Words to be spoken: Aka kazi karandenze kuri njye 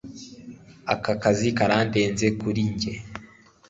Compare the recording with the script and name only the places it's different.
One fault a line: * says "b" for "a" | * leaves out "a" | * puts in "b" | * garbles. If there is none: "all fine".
all fine